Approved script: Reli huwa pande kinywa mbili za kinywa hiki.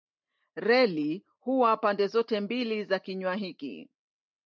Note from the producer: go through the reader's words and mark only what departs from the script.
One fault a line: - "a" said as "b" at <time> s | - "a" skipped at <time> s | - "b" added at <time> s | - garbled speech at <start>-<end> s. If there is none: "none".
- "kinywa" said as "zote" at 2.1 s